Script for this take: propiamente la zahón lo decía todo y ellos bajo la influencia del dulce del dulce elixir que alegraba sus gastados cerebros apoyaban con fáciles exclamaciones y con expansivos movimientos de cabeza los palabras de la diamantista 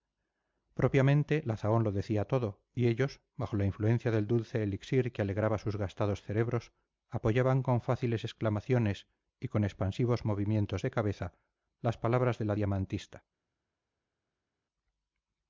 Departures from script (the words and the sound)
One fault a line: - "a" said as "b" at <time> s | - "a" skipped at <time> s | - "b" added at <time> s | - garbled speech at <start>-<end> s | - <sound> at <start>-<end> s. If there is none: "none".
- "del dulce" skipped at 4.6 s
- "los" said as "las" at 11.8 s